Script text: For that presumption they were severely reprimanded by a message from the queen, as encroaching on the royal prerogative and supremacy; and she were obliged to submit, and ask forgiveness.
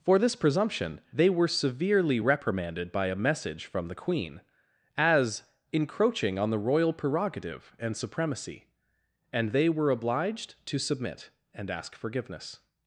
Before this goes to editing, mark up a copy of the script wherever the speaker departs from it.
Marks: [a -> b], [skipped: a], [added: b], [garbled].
For [that -> this] presumption they were severely reprimanded by a message from the queen, as encroaching on the royal prerogative and supremacy; and [she -> they] were obliged to submit, and ask forgiveness.